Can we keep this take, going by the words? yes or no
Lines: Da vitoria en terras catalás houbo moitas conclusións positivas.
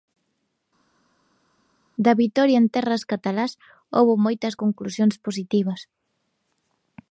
yes